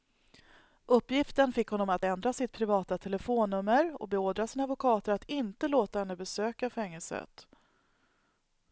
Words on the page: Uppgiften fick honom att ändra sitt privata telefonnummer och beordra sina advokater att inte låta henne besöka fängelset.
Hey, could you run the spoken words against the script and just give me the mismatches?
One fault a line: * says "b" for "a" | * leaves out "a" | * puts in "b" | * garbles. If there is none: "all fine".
all fine